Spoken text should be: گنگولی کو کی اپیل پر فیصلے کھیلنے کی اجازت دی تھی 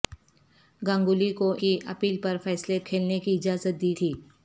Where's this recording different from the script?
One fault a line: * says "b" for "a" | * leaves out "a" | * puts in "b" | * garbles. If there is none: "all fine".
all fine